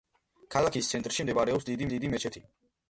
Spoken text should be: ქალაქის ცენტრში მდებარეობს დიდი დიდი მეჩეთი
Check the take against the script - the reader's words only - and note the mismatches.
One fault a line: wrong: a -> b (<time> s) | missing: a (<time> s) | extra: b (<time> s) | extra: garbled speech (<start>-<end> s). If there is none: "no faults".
no faults